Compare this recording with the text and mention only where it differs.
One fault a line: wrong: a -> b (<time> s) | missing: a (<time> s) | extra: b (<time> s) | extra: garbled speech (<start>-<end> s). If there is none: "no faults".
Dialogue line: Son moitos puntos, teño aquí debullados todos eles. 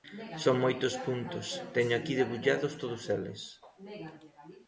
no faults